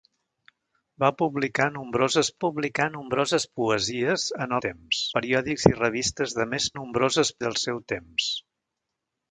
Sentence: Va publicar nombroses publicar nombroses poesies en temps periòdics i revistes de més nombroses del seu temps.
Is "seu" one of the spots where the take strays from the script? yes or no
no